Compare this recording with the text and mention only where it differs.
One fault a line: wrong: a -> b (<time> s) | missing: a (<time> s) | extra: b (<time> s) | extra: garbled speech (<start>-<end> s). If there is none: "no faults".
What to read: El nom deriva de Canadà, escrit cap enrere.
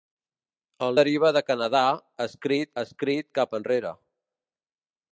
missing: nom (0.9 s)
extra: escrit (2.8 s)